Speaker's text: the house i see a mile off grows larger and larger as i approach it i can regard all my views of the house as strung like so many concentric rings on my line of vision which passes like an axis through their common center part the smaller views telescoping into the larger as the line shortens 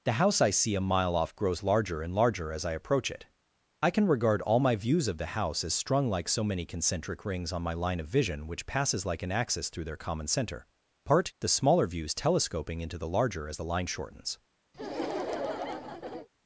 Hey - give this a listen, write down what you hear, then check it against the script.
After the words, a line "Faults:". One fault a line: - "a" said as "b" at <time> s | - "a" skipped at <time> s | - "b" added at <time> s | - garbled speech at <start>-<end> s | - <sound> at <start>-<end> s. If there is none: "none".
the house i see a mile off grows larger and larger as i approach it i can regard all my views of the house as strung like so many concentric rings on my line of vision which passes like an axis through their common center part the smaller views telescoping into the larger as the line shortens
Faults:
- laugh at 14.7-16.3 s